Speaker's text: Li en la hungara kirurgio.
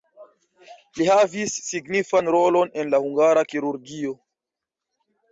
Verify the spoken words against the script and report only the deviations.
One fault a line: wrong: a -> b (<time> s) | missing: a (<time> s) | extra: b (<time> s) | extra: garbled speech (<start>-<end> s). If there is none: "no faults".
extra: havis signifan rolon (1.1 s)